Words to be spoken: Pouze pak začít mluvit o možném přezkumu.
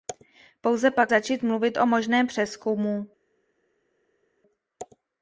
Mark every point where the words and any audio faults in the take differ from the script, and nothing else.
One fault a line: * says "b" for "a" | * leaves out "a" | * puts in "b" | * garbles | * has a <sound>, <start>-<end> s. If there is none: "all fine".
all fine